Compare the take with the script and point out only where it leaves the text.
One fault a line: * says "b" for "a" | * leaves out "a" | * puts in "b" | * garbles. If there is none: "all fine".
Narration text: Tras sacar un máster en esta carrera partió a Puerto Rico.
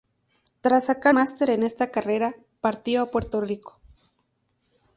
* leaves out "un"